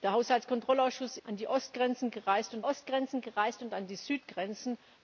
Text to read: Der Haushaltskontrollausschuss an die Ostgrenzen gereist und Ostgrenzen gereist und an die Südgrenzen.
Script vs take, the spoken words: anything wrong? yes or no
no